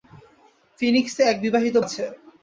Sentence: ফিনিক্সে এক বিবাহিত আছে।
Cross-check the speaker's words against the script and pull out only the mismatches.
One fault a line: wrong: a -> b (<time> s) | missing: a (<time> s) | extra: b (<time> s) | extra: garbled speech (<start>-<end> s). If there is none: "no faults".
no faults